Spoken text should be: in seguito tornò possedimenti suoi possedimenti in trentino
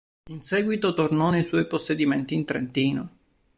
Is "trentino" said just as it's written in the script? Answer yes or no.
yes